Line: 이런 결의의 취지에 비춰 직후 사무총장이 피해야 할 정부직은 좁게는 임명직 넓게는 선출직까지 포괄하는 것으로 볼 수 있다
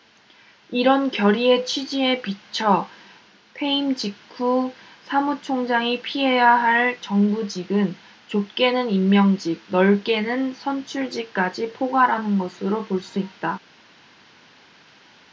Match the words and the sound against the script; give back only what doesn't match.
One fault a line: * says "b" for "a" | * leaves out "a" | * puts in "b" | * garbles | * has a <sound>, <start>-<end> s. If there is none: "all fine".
* puts in "퇴임"